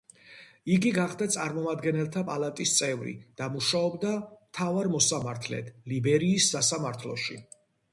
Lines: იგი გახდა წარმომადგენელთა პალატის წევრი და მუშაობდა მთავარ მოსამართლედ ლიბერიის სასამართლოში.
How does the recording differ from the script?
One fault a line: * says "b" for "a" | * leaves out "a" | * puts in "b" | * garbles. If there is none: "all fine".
all fine